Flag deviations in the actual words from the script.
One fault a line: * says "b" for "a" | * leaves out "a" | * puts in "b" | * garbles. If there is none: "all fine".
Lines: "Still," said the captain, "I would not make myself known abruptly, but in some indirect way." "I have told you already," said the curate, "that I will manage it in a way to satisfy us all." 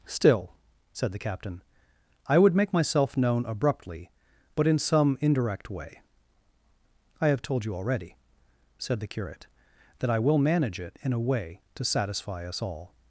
* leaves out "not"